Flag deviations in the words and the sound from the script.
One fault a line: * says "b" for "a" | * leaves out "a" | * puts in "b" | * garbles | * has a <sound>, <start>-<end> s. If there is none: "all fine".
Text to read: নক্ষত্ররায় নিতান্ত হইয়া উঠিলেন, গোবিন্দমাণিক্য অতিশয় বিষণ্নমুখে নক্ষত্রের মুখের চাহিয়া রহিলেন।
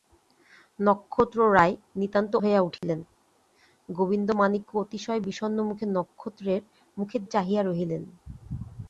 * has a dropout, 2.8-2.8 s